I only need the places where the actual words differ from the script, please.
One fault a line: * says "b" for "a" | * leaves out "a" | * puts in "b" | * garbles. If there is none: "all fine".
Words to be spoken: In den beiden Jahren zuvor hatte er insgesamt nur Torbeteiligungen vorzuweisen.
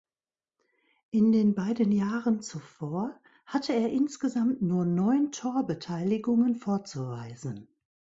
* puts in "neun"